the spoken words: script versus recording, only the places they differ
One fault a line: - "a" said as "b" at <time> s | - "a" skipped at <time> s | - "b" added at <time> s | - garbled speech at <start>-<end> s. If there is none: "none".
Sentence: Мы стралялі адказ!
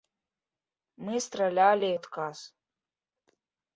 none